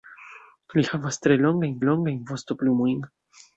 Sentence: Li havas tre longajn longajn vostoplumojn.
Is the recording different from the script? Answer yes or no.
no